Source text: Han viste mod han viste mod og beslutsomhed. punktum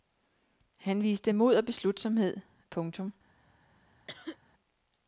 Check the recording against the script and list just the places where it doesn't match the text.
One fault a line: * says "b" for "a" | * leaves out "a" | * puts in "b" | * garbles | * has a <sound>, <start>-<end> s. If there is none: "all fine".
* leaves out "han viste mod"
* has a cough, 4.1-4.4 s